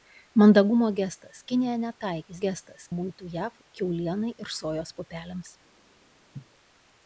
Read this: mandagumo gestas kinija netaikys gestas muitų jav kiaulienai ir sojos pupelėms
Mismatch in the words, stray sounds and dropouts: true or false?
true